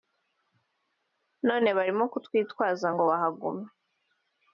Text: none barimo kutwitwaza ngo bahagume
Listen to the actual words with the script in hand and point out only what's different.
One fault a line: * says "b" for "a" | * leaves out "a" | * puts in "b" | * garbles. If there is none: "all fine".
all fine